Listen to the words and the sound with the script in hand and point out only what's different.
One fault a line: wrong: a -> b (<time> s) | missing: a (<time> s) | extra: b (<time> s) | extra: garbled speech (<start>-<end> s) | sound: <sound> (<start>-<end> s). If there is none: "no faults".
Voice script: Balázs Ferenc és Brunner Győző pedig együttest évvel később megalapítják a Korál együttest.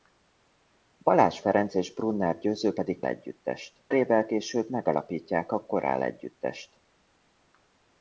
no faults